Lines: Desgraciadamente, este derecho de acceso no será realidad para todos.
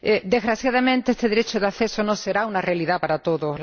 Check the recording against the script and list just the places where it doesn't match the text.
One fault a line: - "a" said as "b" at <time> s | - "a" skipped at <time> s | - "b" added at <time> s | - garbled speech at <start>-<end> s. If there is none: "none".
- "una" added at 2.5 s